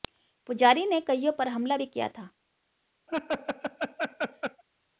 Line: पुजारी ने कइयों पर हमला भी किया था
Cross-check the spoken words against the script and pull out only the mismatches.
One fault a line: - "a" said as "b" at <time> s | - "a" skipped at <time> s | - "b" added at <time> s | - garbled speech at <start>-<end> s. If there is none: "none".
none